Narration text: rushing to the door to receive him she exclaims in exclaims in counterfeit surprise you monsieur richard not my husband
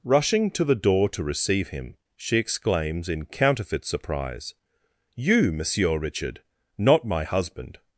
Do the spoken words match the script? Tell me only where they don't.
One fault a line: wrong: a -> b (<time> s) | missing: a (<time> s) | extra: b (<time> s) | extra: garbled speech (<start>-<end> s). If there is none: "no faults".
missing: exclaims in (3.2 s)